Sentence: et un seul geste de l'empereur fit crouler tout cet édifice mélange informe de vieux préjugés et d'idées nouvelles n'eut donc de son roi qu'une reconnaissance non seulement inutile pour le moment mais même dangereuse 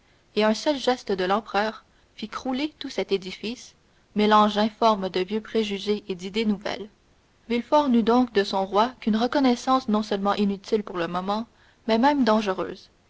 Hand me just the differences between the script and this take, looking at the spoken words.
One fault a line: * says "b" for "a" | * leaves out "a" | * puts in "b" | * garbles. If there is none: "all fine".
* puts in "villefort"